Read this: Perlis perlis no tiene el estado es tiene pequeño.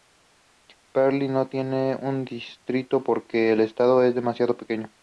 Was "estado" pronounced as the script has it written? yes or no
yes